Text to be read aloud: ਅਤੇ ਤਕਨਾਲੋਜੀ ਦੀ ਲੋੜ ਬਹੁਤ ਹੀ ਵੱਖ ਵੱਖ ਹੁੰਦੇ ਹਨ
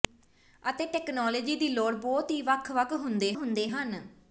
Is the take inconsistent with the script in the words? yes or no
yes